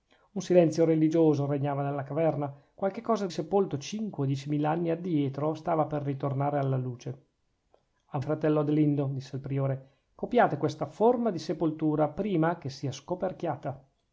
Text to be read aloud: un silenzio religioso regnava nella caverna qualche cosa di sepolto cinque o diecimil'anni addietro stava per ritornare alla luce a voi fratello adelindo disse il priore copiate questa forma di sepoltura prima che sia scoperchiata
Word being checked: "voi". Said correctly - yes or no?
no